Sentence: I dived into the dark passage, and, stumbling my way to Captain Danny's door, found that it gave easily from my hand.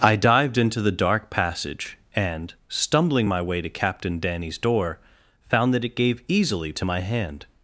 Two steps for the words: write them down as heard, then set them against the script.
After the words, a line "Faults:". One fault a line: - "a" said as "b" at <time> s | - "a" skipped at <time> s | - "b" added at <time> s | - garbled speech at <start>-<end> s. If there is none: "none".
I dived into the dark passage, and, stumbling my way to Captain Danny's door, found that it gave easily to my hand.
Faults:
- "from" said as "to" at 6.7 s